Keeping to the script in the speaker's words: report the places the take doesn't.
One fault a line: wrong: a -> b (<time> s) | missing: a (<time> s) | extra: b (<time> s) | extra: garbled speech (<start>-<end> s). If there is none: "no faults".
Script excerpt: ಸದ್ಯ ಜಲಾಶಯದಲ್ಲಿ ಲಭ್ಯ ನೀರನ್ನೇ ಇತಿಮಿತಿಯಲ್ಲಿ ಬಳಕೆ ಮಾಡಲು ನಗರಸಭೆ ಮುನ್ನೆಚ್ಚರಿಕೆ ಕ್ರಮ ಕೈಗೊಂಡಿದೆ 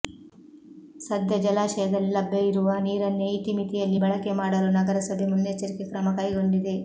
extra: ಇರುವ (2.4 s)